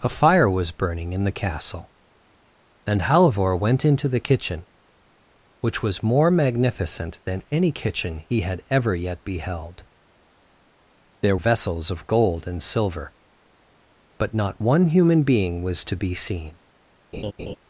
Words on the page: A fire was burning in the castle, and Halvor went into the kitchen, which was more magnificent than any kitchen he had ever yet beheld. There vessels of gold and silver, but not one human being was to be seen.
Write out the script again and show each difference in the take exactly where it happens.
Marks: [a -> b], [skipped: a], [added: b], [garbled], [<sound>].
A fire was burning in the castle, and Halvor went into the kitchen, which was more magnificent than any kitchen he had ever yet beheld. There vessels of gold and silver, but not one human being was to be seen. [laugh]